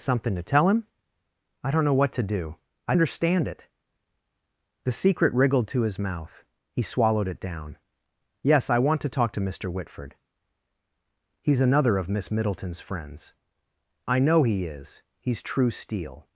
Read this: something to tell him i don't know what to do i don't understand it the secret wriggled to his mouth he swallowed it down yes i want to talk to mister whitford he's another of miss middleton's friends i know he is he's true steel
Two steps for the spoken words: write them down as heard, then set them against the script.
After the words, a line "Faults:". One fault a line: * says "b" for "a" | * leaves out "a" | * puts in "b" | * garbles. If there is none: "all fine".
something to tell him i don't know what to do i understand it the secret wriggled to his mouth he swallowed it down yes i want to talk to mister whitford he's another of miss middleton's friends i know he is he's true steel
Faults:
* leaves out "don't"